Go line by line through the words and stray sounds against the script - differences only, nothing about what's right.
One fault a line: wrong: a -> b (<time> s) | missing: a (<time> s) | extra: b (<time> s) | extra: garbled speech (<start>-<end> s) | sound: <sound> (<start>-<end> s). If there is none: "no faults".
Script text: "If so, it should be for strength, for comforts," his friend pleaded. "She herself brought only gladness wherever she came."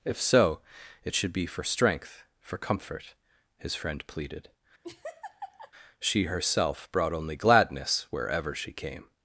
wrong: comforts -> comfort (2.6 s)
sound: laugh (4.8-5.7 s)